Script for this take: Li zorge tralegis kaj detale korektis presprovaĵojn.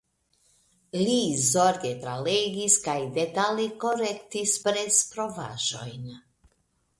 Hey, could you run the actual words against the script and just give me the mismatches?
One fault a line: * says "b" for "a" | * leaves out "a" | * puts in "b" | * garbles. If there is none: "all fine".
all fine